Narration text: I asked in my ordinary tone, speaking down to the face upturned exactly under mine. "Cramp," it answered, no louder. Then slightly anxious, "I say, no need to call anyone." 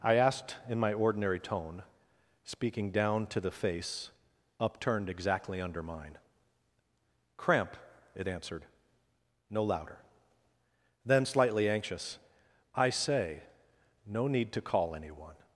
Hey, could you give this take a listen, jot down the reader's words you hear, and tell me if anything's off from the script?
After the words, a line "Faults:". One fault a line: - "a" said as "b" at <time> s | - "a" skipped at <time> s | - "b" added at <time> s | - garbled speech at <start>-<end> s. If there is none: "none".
I asked in my ordinary tone, speaking down to the face upturned exactly under mine. "Cramp," it answered, no louder. Then slightly anxious, "I say, no need to call anyone."
Faults:
none